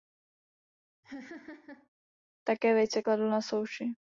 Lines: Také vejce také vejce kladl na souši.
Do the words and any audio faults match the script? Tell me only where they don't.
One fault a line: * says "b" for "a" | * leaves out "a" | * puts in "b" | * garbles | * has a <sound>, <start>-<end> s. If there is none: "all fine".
* has a laugh, 1.0-1.9 s
* leaves out "také vejce"